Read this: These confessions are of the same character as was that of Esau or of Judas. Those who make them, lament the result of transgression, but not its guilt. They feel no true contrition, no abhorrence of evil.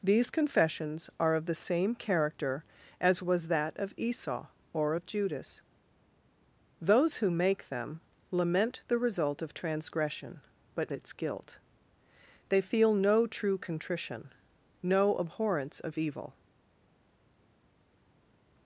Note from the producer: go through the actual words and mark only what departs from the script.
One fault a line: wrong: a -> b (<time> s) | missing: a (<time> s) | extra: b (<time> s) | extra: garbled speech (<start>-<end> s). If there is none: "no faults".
missing: not (10.9 s)